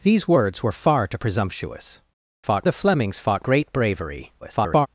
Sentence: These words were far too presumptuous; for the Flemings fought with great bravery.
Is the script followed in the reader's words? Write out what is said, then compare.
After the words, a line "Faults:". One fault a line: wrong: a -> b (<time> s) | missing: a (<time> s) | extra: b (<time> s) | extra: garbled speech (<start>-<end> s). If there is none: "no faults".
These words were far too presumptuous; fought the Flemings fought great bravery. [garbled]
Faults:
wrong: for -> fought (2.4 s)
missing: with (3.4 s)
extra: garbled speech (4.4-4.9 s)